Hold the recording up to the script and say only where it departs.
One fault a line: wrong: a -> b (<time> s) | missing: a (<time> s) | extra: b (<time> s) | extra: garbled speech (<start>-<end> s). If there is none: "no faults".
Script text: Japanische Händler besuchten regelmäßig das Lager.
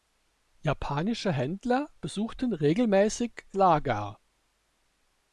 missing: das (3.5 s)